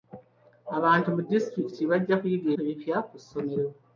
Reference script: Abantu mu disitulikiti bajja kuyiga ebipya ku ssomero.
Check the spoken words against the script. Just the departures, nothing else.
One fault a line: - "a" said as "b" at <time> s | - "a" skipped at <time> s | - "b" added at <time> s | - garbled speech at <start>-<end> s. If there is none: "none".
none